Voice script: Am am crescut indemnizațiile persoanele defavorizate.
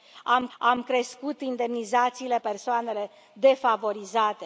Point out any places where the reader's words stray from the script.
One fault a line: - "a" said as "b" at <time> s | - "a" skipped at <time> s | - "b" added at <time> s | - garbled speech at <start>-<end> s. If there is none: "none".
none